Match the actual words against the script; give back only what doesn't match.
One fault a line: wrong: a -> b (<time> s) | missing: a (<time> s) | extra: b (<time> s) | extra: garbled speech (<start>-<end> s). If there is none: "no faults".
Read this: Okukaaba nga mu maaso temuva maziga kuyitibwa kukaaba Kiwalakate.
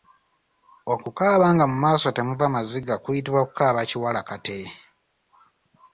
no faults